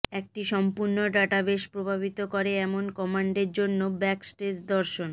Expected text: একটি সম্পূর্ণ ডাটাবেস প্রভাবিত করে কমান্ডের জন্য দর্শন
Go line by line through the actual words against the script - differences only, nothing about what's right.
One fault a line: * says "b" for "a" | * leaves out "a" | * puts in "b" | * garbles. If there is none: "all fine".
* puts in "এমন"
* puts in "ব্যাকস্টেজ"